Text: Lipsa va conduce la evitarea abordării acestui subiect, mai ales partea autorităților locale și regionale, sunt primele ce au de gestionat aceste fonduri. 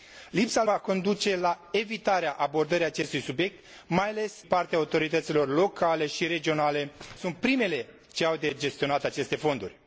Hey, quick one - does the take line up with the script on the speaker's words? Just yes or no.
yes